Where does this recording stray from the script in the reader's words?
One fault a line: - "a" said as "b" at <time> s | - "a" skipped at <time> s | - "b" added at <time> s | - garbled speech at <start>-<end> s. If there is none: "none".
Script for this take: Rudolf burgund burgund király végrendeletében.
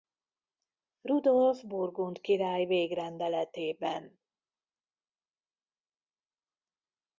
- "burgund" skipped at 2.2 s